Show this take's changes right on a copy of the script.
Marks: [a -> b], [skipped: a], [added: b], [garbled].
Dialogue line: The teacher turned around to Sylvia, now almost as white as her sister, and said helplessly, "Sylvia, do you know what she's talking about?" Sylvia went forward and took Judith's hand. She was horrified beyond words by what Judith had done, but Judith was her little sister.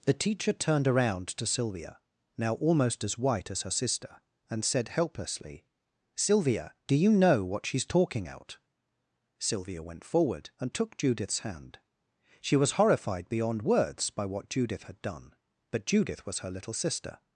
The teacher turned around to Sylvia, now almost as white as her sister, and said helplessly, "Sylvia, do you know what she's talking [about?" -> out] Sylvia went forward and took Judith's hand. She was horrified beyond words by what Judith had done, but Judith was her little sister.